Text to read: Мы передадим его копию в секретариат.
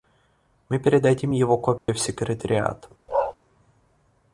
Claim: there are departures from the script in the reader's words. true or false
false